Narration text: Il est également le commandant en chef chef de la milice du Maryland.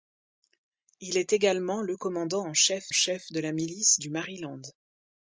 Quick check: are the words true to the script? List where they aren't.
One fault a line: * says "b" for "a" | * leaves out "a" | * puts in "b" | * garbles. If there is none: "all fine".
all fine